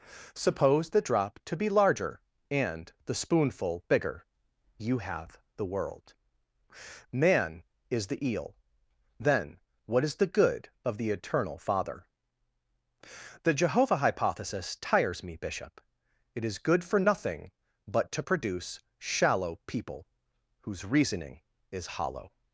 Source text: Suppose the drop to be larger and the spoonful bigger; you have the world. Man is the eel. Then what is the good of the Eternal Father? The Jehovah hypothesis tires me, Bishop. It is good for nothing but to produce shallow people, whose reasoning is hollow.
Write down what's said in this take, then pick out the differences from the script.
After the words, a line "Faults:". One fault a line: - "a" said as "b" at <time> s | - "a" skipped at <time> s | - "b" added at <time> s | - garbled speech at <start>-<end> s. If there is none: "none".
Suppose the drop to be larger and the spoonful bigger; you have the world. Man is the eel. Then what is the good of the Eternal Father? The Jehovah hypothesis tires me, Bishop. It is good for nothing but to produce shallow people, whose reasoning is hollow.
Faults:
none